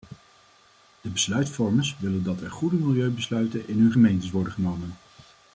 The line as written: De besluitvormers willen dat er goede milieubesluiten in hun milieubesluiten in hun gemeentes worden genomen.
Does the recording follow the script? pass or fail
fail